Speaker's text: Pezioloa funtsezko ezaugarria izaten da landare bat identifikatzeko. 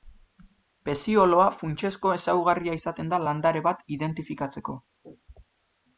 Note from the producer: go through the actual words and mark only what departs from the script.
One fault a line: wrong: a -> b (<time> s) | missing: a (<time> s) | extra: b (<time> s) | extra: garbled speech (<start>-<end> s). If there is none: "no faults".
no faults